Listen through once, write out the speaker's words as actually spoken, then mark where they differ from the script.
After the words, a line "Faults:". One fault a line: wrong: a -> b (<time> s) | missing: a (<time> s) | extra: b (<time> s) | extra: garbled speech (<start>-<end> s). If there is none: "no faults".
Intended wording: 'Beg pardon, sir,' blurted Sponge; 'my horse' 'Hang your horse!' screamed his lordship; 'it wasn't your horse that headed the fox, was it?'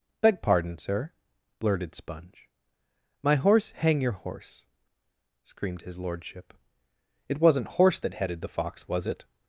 'Beg pardon, sir,' blurted Sponge; 'my horse' 'Hang your horse!' screamed his lordship; 'it wasn't horse that headed the fox, was it?'
Faults:
missing: your (7.7 s)